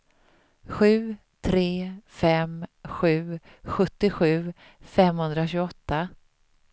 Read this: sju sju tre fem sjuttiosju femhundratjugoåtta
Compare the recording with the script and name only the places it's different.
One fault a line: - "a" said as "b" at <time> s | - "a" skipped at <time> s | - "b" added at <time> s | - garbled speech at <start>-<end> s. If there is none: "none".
- "sju" skipped at 1.1 s
- "sju" added at 2.9 s